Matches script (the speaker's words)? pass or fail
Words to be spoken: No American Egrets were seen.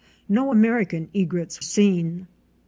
fail